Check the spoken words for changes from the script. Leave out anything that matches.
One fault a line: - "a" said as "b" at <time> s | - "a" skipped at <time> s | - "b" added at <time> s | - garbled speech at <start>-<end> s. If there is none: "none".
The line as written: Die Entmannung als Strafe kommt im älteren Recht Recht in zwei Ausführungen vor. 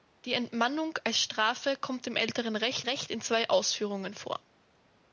none